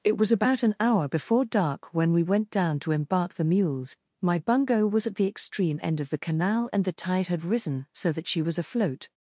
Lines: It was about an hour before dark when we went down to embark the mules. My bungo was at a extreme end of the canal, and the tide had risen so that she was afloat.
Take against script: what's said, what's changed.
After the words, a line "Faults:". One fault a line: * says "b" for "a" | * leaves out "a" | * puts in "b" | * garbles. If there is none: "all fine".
It was about an hour before dark when we went down to embark the mules. My bungo was at the extreme end of the canal, and the tide had risen so that she was afloat.
Faults:
* says "the" for "a"